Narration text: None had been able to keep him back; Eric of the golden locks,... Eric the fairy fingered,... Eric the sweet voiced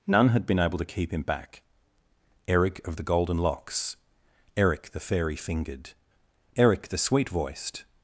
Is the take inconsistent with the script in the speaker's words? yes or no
no